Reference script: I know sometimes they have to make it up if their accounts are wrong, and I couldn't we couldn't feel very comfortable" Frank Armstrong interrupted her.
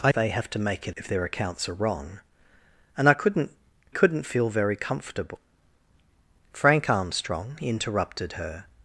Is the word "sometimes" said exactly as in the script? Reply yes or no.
no